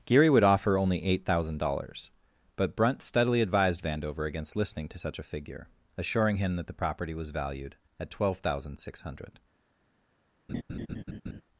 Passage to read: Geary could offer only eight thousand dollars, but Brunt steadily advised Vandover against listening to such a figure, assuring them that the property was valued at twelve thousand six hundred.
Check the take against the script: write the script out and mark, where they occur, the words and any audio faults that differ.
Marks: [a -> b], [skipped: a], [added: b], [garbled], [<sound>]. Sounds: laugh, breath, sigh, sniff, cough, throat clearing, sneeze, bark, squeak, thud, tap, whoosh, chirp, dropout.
Geary [could -> would] offer only eight thousand dollars, but Brunt steadily advised Vandover against listening to such a figure, assuring [them -> him] that the property was valued at twelve thousand six hundred. [laugh]